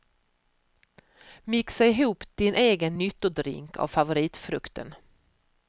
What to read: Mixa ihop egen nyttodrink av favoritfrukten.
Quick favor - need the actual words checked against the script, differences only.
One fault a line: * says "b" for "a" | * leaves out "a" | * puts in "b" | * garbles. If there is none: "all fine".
* puts in "din"